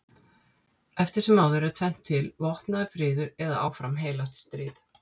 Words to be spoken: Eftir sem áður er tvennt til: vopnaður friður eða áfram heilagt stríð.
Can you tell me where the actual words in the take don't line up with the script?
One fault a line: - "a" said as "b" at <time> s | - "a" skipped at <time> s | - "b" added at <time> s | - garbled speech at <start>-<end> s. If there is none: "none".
none